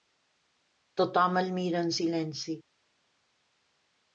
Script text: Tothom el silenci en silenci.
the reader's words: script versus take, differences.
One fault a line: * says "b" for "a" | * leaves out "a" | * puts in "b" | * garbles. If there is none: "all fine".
* says "mira" for "silenci"